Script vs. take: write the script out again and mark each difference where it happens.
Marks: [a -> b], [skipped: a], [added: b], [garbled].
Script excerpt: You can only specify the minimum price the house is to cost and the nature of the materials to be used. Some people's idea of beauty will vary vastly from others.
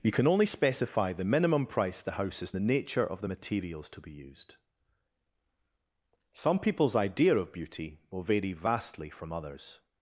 You can only specify the minimum price the house is [skipped: to cost and] the nature of the materials to be used. Some people's idea of beauty will vary vastly from others.